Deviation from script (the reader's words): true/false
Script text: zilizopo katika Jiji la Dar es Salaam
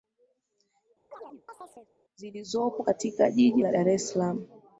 false